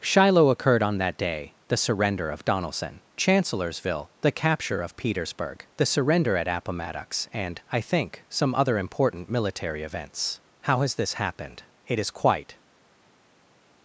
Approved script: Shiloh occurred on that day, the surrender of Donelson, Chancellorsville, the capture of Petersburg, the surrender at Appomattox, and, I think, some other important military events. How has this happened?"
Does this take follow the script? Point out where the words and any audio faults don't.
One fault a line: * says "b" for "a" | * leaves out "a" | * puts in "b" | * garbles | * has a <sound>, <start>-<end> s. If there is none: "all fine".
* puts in "It is quite"